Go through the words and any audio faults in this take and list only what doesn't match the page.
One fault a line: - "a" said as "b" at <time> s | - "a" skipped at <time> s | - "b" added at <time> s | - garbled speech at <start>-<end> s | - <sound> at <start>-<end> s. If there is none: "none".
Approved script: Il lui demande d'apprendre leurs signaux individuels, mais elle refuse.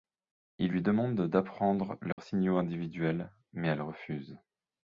- dropout at 2.1-2.2 s